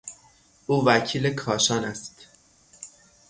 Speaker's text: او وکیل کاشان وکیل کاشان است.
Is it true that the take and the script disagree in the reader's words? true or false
true